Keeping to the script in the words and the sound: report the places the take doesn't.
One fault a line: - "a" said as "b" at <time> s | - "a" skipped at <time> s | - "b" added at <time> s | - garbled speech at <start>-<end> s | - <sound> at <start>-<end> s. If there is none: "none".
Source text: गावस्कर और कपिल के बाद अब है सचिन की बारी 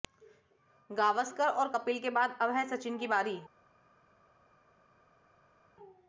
none